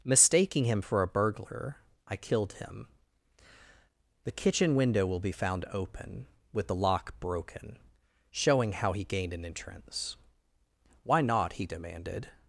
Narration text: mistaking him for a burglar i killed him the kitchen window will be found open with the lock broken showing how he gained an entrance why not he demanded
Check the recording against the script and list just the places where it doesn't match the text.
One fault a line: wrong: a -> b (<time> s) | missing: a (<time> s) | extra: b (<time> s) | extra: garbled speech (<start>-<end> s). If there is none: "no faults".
no faults